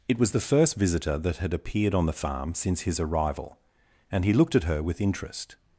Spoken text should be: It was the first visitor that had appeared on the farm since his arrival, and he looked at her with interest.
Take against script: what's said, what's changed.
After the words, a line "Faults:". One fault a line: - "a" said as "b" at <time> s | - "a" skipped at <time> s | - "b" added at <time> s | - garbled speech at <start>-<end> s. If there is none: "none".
It was the first visitor that had appeared on the farm since his arrival, and he looked at her with interest.
Faults:
none